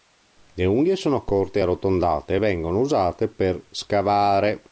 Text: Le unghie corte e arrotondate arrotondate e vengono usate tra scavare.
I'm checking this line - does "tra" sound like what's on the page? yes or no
no